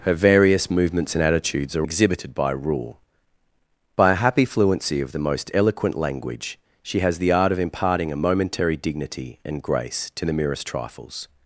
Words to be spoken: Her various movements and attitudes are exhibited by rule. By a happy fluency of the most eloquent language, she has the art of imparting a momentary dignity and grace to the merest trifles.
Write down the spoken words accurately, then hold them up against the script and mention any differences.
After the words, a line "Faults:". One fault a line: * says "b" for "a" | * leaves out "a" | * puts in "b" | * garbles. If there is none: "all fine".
Her various movements and attitudes are exhibited by rule. By a happy fluency of the most eloquent language, she has the art of imparting a momentary dignity and grace to the merest trifles.
Faults:
all fine